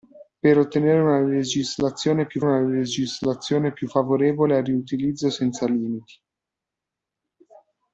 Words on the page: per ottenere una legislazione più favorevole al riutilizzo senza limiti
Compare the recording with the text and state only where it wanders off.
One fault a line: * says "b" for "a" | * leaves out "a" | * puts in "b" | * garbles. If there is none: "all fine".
* puts in "una legislazione più"